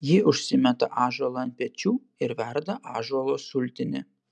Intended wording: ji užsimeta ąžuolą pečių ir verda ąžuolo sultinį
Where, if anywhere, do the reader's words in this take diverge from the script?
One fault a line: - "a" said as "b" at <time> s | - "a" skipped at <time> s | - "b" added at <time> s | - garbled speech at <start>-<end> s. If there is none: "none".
- "ant" added at 1.4 s